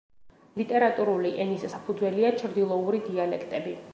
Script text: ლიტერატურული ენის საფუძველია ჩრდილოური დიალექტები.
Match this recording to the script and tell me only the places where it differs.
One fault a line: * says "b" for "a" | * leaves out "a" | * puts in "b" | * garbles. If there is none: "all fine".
all fine